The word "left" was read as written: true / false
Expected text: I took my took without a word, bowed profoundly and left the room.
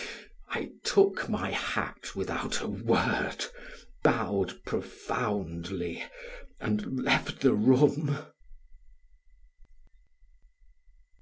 true